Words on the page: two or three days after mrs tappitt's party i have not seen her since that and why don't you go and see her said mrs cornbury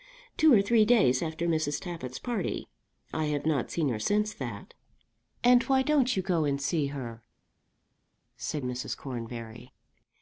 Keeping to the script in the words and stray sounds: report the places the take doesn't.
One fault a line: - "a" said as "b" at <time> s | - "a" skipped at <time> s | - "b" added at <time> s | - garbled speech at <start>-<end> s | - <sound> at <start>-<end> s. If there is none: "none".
none